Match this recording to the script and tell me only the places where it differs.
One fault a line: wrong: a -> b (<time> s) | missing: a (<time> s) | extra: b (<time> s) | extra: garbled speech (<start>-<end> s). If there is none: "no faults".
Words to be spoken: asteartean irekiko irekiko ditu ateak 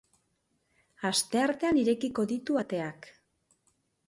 missing: irekiko (2.2 s)